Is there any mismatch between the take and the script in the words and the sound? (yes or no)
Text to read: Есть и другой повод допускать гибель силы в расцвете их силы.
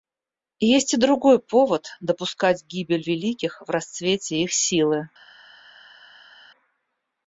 yes